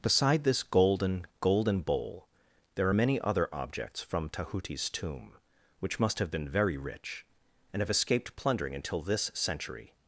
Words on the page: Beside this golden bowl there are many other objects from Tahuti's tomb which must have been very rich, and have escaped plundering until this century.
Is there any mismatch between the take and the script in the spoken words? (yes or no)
yes